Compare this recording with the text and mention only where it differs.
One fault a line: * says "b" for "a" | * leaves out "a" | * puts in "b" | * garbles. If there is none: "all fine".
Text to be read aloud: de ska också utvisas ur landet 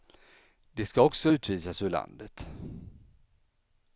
all fine